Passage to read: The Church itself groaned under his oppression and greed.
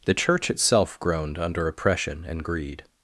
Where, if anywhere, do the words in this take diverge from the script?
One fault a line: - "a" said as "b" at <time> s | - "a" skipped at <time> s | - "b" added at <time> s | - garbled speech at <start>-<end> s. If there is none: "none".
- "his" skipped at 1.7 s